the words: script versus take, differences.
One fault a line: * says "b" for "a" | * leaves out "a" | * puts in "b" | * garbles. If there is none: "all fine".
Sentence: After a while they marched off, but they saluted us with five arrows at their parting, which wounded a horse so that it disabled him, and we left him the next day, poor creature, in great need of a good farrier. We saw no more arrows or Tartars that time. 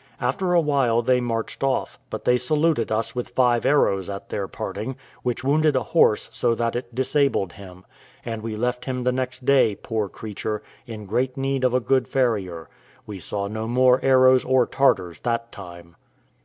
all fine